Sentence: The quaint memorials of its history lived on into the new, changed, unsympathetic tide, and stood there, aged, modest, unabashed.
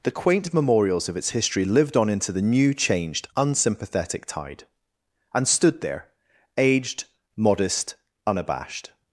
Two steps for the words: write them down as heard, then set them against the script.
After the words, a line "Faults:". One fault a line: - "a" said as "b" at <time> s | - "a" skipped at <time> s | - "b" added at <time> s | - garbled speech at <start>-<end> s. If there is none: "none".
The quaint memorials of its history lived on into the new, changed, unsympathetic tide, and stood there, aged, modest, unabashed.
Faults:
none